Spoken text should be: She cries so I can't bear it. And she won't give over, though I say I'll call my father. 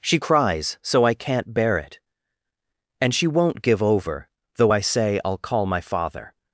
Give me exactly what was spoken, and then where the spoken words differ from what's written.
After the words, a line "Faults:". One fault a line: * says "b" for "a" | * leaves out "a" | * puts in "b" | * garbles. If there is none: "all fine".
She cries so I can't bear it. And she won't give over, though I say I'll call my father.
Faults:
all fine